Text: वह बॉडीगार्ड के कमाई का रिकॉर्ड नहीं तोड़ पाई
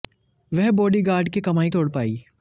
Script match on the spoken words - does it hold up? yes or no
no